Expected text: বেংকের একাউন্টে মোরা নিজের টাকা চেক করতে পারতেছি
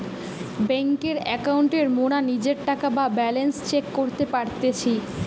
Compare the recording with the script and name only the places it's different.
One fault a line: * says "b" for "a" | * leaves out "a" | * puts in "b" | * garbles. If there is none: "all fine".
* puts in "বা ব্যালান্স"